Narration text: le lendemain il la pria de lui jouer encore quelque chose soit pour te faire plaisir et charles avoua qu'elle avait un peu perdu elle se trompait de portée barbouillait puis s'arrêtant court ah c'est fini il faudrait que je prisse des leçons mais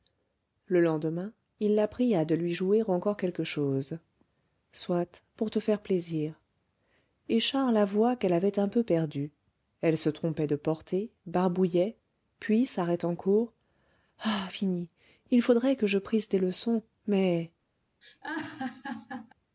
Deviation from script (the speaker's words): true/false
true